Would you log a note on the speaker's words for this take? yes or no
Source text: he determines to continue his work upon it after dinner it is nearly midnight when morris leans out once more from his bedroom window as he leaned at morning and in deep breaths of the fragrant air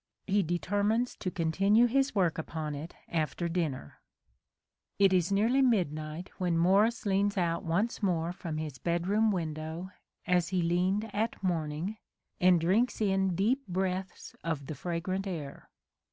yes